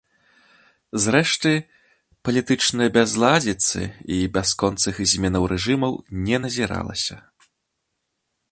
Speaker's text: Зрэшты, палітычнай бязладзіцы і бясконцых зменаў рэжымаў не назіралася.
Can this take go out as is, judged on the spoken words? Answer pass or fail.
pass